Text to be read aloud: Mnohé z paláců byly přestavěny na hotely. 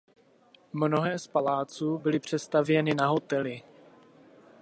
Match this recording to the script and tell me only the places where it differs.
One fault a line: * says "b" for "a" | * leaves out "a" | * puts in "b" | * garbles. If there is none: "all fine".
all fine